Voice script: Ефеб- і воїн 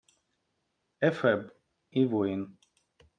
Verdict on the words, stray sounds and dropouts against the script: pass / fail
pass